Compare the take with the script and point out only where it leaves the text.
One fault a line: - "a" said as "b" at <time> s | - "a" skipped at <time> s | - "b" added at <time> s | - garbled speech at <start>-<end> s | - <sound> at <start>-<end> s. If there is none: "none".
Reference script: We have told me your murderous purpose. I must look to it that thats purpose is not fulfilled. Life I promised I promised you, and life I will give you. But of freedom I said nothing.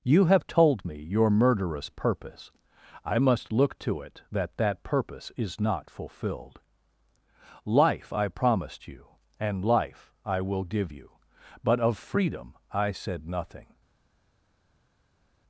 - "We" said as "You" at 0.0 s
- "thats" said as "that" at 4.6 s
- "I promised" skipped at 8.9 s